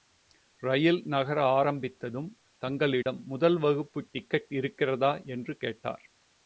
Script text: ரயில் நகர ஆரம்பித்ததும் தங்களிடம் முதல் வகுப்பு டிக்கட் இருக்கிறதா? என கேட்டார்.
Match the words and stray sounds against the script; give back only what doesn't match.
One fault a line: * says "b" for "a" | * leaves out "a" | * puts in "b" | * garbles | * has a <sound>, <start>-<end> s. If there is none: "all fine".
* has a dropout, 3.0-3.1 s
* says "என்று" for "என"